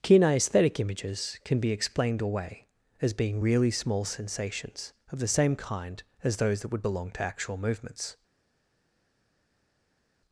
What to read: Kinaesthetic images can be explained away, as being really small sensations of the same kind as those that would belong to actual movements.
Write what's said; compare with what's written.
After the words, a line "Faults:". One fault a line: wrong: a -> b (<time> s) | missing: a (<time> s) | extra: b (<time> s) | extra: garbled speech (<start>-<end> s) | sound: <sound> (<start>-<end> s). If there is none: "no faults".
Kinaesthetic images can be explained away, as being really small sensations of the same kind as those that would belong to actual movements.
Faults:
no faults